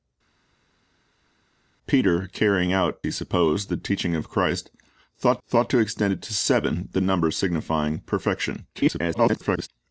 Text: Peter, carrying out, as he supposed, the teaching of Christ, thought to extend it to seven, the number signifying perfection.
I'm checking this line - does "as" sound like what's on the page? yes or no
no